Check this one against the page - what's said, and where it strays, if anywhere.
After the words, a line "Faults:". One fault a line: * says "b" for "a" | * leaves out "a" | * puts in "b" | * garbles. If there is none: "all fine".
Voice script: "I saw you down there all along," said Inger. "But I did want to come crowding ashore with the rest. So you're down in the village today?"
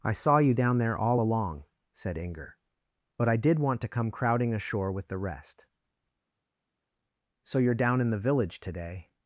"I saw you down there all along," said Inger. "But I did want to come crowding ashore with the rest. So you're down in the village today?"
Faults:
all fine